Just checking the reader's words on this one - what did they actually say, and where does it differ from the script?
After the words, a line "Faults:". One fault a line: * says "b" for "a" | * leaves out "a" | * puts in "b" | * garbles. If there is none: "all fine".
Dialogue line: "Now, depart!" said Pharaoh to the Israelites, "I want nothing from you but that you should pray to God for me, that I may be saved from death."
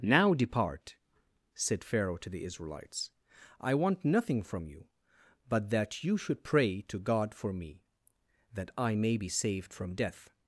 "Now, depart!" said Pharaoh to the Israelites, "I want nothing from you but that you should pray to God for me, that I may be saved from death."
Faults:
all fine